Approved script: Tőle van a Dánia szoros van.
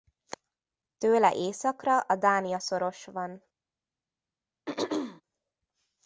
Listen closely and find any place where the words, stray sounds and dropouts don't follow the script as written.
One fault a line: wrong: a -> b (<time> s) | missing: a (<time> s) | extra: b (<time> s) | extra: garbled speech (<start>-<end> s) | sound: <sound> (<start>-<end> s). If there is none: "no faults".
wrong: van -> északra (1.4 s)
sound: throat clearing (4.7-5.2 s)